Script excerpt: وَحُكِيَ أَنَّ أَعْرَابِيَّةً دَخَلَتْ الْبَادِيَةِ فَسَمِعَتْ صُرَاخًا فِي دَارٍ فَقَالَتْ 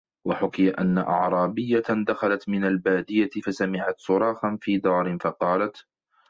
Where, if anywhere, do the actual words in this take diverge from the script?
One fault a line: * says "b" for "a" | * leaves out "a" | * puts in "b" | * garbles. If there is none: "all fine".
* puts in "مِنْ"